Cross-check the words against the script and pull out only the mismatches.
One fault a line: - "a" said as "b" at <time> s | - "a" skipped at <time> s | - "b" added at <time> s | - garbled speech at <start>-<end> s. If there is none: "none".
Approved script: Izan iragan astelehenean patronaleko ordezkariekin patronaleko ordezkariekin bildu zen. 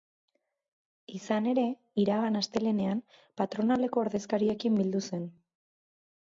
- "ere" added at 1.5 s
- "patronaleko ordezkariekin" skipped at 4.8 s